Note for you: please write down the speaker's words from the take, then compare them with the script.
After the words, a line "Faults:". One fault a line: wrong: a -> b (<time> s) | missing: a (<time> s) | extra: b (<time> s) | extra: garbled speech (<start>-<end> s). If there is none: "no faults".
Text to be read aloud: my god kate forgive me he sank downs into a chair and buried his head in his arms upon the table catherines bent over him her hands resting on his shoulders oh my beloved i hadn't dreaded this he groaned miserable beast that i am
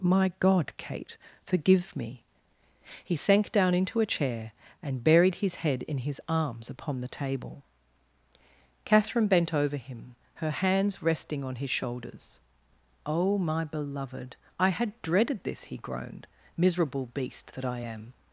my god kate forgive me he sank down into a chair and buried his head in his arms upon the table catherine bent over him her hands resting on his shoulders oh my beloved i had dreaded this he groaned miserable beast that i am
Faults:
wrong: downs -> down (3.5 s)
wrong: catherines -> catherine (8.8 s)
wrong: hadn't -> had (14.7 s)